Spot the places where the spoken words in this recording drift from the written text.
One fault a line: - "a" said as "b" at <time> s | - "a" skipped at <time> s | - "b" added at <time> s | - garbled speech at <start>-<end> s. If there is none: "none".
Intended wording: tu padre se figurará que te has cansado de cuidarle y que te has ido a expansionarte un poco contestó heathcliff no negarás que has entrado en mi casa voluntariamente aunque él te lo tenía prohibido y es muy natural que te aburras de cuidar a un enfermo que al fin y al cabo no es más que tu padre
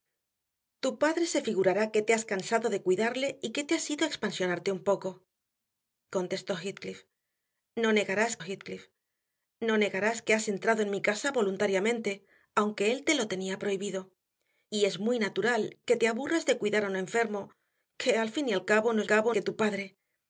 - "heathcliff no negarás" added at 8.4 s
- "más" said as "cabo" at 19.0 s